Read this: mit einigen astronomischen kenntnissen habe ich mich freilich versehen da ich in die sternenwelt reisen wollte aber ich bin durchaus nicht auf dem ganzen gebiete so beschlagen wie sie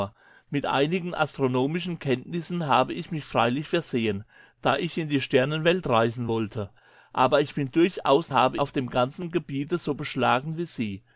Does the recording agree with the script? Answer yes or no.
no